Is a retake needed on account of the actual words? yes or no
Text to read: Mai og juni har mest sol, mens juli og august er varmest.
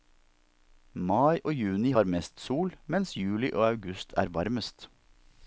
no